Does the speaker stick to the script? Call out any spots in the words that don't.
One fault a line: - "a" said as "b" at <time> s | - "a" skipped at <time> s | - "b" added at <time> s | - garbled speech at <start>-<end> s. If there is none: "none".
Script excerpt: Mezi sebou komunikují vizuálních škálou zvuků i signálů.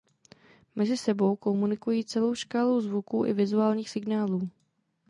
- "vizuálních" said as "celou" at 2.0 s
- "vizuálních" added at 3.3 s